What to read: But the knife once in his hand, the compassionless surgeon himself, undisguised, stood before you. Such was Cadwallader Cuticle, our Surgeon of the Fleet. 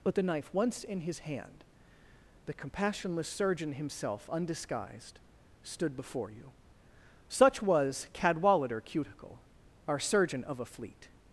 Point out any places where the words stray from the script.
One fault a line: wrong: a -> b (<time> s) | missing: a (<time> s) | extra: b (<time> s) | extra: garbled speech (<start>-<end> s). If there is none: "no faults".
wrong: the -> a (10.6 s)